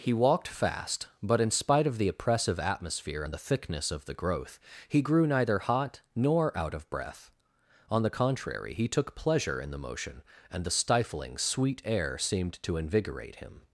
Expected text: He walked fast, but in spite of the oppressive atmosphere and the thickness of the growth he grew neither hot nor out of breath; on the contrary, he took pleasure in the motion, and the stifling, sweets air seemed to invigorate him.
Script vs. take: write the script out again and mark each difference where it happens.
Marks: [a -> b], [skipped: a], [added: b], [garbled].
He walked fast, but in spite of the oppressive atmosphere and the thickness of the growth he grew neither hot nor out of breath; on the contrary, he took pleasure in the motion, and the stifling, [sweets -> sweet] air seemed to invigorate him.